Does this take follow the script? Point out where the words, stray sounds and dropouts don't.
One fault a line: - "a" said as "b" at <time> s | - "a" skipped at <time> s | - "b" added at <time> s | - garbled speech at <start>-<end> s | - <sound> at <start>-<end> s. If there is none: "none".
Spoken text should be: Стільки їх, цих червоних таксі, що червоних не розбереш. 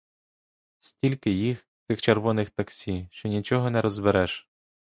- "червоних" said as "нічого" at 3.3 s